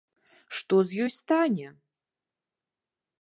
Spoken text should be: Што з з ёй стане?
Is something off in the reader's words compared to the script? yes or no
yes